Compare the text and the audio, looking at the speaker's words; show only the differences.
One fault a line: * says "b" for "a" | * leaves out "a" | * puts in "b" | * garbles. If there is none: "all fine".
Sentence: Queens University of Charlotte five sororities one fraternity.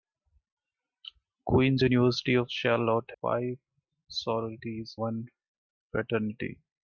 all fine